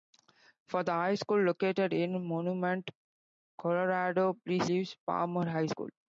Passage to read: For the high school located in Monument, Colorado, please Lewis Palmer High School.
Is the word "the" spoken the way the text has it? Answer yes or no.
yes